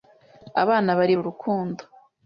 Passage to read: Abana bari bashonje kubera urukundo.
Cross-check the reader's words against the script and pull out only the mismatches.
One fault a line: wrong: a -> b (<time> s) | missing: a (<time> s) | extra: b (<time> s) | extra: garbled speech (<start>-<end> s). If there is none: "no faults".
missing: bashonje kubera (1.1 s)